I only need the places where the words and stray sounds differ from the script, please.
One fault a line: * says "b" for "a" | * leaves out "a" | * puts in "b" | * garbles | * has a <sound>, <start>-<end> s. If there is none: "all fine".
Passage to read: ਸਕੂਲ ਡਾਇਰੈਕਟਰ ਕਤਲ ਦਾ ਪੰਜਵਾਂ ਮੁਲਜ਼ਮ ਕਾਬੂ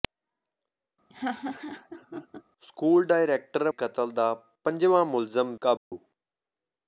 * has a laugh, 1.1-2.4 s
* has a dropout, 5.8-5.9 s